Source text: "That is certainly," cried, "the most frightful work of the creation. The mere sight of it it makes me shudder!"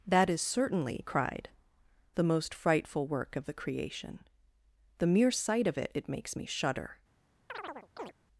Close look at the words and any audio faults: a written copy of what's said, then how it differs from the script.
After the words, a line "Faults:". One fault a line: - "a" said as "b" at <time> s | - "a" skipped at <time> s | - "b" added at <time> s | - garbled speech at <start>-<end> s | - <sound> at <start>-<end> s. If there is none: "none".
"That is certainly," cried, "the most frightful work of the creation. The mere sight of it it makes me shudder!"
Faults:
- chirp at 7.5-8.1 s